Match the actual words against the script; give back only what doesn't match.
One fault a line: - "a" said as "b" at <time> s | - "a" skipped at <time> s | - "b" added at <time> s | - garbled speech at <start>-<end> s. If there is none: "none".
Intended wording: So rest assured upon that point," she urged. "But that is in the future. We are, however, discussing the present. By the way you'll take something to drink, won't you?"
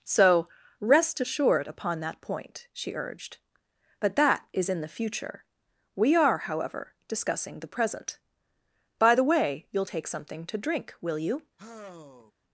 - "won't" said as "will" at 11.0 s